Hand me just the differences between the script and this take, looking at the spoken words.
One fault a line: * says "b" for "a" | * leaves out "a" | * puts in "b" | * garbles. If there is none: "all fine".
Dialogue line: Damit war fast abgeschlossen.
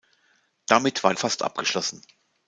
all fine